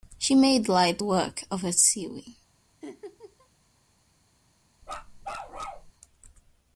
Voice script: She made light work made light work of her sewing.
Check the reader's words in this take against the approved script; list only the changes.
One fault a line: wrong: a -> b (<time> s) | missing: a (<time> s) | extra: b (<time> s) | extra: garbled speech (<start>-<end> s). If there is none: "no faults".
missing: made light work (1.4 s)